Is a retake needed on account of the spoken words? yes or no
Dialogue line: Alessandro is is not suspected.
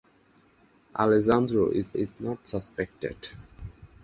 no